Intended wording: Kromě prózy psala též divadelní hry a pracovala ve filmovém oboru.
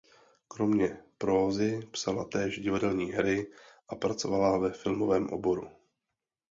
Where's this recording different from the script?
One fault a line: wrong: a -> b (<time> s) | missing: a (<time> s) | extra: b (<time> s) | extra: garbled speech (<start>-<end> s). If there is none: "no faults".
no faults